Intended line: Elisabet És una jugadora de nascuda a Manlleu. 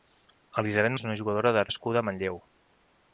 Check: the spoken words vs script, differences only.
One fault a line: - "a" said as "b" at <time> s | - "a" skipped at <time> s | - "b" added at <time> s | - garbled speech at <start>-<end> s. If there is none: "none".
none